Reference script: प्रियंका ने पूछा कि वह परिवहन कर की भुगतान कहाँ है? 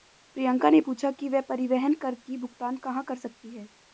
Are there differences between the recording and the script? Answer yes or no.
yes